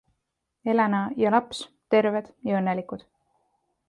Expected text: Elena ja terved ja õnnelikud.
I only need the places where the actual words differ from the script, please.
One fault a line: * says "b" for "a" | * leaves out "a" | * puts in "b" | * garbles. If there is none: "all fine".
* puts in "laps"